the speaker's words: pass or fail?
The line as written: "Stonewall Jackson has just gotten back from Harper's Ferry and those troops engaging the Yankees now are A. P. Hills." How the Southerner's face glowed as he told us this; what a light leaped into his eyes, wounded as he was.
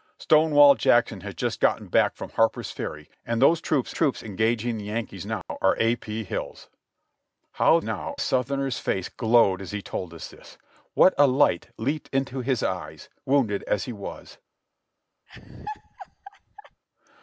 fail